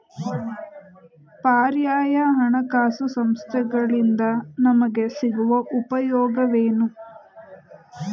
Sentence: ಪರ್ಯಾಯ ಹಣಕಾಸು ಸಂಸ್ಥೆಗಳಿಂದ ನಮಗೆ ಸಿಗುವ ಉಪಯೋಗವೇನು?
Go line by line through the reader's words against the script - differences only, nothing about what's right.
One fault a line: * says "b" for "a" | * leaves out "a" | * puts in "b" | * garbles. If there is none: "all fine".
all fine